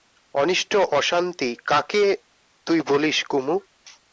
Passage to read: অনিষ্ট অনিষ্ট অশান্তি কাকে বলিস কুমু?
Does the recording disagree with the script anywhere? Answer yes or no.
yes